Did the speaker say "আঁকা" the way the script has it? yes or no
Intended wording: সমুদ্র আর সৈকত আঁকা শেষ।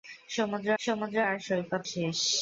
no